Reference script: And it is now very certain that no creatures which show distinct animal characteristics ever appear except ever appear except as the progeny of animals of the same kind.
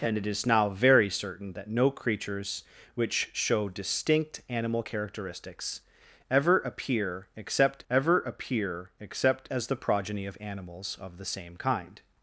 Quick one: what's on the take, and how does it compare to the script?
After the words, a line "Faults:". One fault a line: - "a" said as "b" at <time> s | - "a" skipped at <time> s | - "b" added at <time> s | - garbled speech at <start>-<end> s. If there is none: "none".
And it is now very certain that no creatures which show distinct animal characteristics ever appear except ever appear except as the progeny of animals of the same kind.
Faults:
none